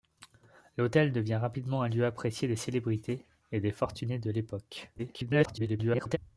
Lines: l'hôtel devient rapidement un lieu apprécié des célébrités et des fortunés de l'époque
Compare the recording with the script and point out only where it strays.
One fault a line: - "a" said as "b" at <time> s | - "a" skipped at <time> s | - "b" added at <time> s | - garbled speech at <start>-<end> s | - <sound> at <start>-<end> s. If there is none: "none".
- garbled speech at 5.0-6.2 s